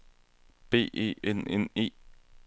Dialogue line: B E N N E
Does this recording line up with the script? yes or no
yes